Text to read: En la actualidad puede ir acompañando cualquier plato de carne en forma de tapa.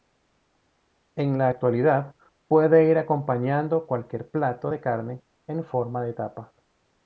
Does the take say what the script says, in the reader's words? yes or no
yes